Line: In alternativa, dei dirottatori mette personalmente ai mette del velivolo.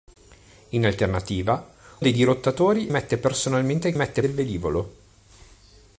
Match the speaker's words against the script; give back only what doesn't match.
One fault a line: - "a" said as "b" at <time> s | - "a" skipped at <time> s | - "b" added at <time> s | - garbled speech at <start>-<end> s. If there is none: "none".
none